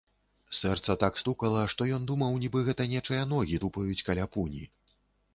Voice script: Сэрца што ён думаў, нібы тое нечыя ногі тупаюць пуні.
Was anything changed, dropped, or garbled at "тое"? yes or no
yes